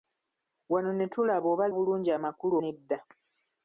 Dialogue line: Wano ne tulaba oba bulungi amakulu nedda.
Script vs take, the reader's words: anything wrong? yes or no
no